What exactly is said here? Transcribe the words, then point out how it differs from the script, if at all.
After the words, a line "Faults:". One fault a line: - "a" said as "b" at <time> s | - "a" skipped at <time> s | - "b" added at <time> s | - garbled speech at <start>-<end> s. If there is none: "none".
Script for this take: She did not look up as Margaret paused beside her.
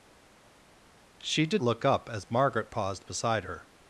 She did look up as Margaret paused beside her.
Faults:
- "not" skipped at 1.6 s